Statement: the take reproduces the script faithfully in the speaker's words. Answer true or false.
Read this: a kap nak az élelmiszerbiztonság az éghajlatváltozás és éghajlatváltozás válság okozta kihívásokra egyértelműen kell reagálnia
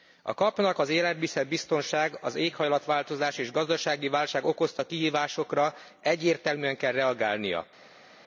false